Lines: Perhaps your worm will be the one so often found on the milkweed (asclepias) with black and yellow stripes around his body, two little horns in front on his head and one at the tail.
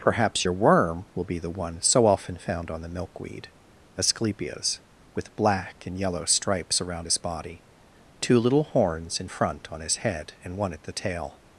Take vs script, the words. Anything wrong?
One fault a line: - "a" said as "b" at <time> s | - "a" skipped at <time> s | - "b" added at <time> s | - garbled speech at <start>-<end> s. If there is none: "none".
none